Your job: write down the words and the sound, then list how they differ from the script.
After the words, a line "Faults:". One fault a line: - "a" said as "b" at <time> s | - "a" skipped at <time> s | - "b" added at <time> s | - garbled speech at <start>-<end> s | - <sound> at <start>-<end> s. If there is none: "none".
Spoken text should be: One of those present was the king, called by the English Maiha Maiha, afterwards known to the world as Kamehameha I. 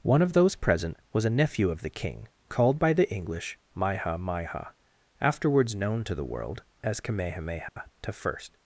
One of those present was a nephew of the king, called by the English Maiha Maiha, afterwards known to the world as Kamehameha I.
Faults:
- "a nephew of" added at 1.2 s
- dropout at 7.7-7.8 s